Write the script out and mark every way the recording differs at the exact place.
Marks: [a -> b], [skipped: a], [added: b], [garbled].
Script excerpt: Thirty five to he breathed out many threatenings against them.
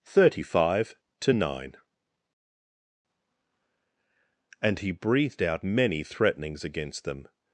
Thirty five to [added: nine And] he breathed out many threatenings against them.